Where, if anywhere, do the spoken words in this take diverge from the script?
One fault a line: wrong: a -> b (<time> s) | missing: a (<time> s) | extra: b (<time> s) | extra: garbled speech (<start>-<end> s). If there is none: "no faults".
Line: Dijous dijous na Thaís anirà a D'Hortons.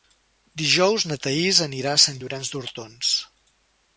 missing: dijous (1.1 s)
extra: Sant Llorenç (2.0 s)